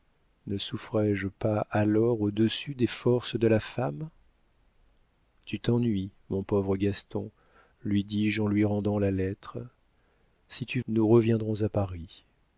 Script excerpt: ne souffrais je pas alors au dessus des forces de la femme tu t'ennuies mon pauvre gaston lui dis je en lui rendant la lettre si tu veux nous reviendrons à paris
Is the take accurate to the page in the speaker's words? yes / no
no